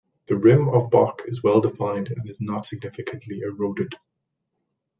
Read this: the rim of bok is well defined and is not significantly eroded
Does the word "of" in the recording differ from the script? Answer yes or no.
no